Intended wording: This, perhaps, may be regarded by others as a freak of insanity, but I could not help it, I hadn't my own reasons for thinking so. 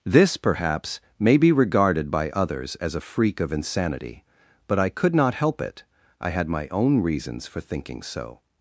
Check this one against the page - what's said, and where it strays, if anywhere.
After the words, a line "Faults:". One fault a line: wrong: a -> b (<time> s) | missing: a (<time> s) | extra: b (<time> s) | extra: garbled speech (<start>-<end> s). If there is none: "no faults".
This, perhaps, may be regarded by others as a freak of insanity, but I could not help it, I had my own reasons for thinking so.
Faults:
wrong: hadn't -> had (6.3 s)